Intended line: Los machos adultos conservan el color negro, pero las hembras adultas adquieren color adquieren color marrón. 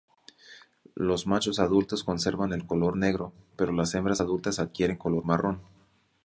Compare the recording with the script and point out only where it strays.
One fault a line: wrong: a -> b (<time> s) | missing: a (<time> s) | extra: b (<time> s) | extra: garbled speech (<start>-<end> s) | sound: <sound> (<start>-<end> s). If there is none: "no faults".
missing: adquieren color (5.2 s)